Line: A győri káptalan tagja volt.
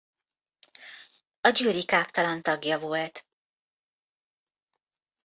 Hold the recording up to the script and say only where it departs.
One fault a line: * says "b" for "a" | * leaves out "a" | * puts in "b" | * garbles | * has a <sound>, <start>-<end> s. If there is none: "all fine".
all fine